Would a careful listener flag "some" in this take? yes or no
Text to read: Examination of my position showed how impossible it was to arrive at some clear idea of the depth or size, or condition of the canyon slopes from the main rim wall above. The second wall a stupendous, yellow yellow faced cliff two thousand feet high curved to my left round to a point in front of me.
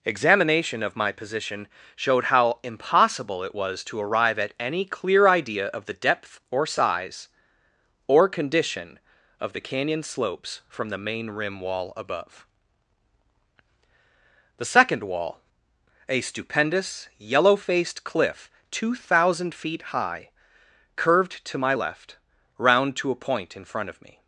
yes